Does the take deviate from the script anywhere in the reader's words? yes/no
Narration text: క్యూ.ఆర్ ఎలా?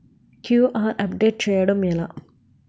yes